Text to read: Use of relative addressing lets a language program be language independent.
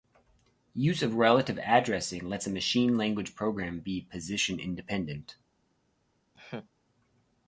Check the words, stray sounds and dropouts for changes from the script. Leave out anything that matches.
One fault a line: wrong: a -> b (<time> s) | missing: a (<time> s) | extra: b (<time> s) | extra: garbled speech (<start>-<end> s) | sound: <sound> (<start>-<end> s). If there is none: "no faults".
extra: machine (2.5 s)
wrong: language -> position (4.0 s)
sound: laugh (6.3-6.7 s)